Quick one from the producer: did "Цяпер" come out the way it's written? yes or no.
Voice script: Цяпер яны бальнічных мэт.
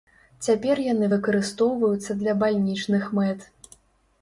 yes